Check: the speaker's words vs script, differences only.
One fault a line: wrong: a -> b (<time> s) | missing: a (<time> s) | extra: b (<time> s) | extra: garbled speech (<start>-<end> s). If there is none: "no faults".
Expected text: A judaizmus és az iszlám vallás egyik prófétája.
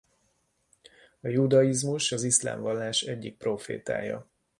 missing: és (2.1 s)